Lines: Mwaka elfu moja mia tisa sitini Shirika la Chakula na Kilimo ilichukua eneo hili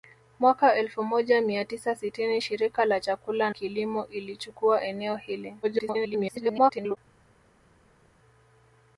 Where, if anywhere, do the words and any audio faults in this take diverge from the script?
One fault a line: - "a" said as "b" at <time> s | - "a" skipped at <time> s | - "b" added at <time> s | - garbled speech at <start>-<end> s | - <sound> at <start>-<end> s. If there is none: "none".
- "na" skipped at 3.5 s
- garbled speech at 5.6-7.0 s